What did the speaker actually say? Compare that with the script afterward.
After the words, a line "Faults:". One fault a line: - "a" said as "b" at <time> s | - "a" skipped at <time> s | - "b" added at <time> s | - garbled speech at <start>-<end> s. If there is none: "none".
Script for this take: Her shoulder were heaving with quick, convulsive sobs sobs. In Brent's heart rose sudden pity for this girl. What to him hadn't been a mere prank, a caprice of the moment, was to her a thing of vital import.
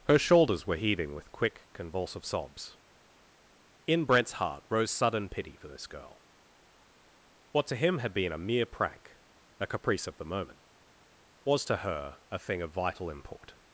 Her shoulders were heaving with quick, convulsive sobs. In Brent's heart rose sudden pity for this girl. What to him had been a mere prank, a caprice of the moment, was to her a thing of vital import.
Faults:
- "shoulder" said as "shoulders" at 0.2 s
- "sobs" skipped at 2.8 s
- "hadn't" said as "had" at 8.0 s